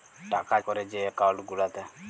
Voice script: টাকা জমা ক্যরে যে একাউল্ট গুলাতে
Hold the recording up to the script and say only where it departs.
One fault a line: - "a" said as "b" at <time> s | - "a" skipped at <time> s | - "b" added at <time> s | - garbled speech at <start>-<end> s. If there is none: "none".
- "জমা" skipped at 0.6 s